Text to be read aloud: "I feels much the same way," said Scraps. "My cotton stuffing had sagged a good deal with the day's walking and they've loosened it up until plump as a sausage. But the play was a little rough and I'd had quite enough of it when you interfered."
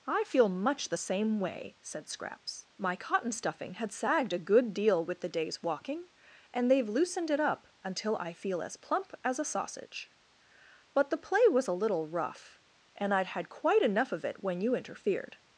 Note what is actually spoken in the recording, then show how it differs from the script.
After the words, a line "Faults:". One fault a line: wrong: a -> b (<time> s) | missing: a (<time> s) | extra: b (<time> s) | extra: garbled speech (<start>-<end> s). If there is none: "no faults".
"I feel much the same way," said Scraps. "My cotton stuffing had sagged a good deal with the day's walking and they've loosened it up until I feel as plump as a sausage. But the play was a little rough and I'd had quite enough of it when you interfered."
Faults:
wrong: feels -> feel (0.2 s)
extra: I feel as (8.1 s)